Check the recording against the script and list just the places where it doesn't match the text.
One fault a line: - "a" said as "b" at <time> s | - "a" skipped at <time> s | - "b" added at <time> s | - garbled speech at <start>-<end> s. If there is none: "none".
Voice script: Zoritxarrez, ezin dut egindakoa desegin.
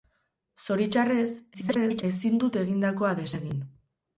- garbled speech at 1.5-2.0 s